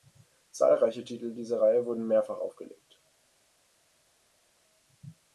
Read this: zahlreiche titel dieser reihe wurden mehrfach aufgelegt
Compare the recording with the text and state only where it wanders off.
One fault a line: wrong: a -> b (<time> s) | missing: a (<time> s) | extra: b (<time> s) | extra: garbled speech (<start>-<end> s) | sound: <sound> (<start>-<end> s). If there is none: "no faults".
no faults